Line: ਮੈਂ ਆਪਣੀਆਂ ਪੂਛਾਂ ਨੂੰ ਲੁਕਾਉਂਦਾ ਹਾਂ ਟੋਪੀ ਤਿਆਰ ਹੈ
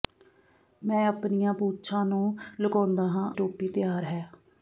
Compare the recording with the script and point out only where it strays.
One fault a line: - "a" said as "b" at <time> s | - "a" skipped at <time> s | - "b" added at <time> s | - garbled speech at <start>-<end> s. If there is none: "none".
none